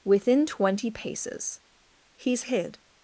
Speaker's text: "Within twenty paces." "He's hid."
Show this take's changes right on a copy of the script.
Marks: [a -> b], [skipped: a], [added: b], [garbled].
"Within twenty paces." "He's hid."